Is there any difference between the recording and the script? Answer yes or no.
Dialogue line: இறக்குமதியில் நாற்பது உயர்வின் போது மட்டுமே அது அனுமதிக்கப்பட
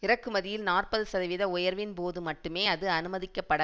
yes